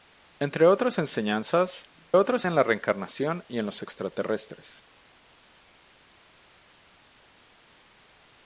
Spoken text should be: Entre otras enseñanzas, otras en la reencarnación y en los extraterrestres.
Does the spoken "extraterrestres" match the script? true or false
true